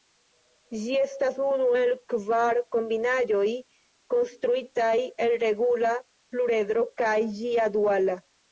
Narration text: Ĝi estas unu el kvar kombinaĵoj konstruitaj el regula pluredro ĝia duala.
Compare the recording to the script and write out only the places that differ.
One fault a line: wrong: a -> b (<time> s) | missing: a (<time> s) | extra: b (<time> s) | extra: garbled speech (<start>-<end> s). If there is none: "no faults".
extra: kaj (7.0 s)